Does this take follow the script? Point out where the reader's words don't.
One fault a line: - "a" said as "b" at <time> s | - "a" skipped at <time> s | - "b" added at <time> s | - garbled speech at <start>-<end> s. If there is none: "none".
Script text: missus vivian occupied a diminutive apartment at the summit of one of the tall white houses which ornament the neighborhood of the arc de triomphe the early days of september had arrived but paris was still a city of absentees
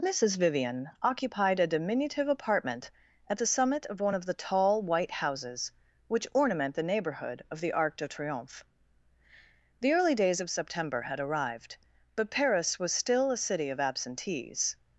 none